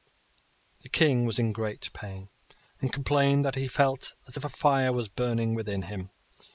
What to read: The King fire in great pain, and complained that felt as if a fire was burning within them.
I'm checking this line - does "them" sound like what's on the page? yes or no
no